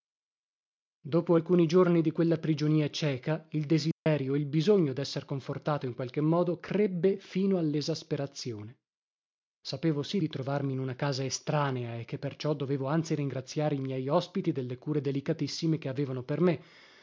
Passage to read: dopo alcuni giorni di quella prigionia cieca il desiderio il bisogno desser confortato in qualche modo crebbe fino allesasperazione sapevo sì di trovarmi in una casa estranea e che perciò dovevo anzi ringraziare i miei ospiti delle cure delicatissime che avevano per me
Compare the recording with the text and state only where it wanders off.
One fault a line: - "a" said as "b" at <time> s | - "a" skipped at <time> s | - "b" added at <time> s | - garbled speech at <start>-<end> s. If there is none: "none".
none